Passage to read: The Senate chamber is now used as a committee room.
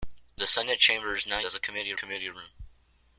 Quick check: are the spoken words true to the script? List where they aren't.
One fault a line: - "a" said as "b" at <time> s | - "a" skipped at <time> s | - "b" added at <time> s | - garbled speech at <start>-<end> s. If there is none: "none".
- "used" skipped at 1.4 s
- "committee" added at 1.9 s